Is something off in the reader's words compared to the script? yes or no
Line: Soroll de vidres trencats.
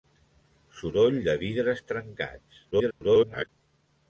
yes